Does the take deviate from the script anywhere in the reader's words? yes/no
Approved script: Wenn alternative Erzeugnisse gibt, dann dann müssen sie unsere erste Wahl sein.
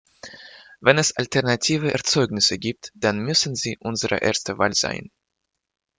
yes